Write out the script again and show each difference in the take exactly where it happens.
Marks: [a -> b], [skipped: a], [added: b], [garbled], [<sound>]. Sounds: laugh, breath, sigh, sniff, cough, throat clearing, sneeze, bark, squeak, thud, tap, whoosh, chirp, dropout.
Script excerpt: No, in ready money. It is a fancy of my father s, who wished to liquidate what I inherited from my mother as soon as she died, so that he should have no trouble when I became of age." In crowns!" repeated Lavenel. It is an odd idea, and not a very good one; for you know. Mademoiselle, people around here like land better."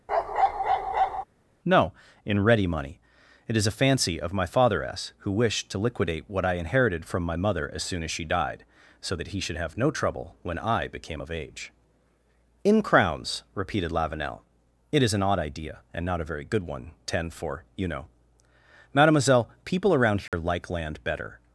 [bark] No, in ready money. It is a fancy of my father s, who wished to liquidate what I inherited from my mother as soon as she died, so that he should have no trouble when I became of age." In crowns!" repeated Lavenel. It is an odd idea, and not a very good one; [added: ten] for you know. Mademoiselle, people around here [dropout] like land better."